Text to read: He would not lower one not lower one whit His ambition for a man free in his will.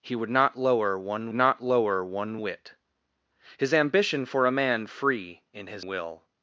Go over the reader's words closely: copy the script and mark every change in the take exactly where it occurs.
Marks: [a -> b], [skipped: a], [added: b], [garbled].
He would not lower one not lower one whit His ambition for a man free in his will.